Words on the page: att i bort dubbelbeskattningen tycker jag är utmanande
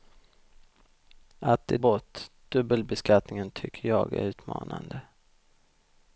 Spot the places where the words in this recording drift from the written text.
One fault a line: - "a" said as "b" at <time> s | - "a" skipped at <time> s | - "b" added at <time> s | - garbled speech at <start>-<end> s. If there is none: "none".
none